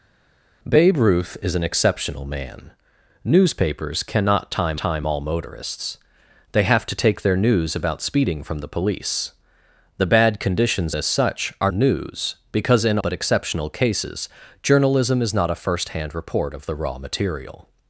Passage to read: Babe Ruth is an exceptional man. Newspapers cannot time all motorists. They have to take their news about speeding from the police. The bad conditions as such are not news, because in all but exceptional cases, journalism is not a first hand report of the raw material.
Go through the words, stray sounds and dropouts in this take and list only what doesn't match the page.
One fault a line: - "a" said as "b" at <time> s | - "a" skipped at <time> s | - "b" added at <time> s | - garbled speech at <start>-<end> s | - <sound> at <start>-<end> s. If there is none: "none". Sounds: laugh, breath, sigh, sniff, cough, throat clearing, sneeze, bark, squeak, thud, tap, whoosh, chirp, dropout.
- "time" added at 4.8 s
- "not" skipped at 11.7 s
- "all" skipped at 13.0 s